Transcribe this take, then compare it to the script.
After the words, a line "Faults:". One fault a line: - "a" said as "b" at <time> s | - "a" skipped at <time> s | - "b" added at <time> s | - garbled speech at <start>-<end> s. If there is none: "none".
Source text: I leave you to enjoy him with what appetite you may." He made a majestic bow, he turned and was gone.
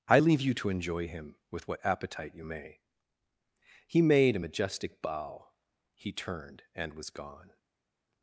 I leave you to enjoy him with what appetite you may." He made a majestic bow, he turned and was gone.
Faults:
none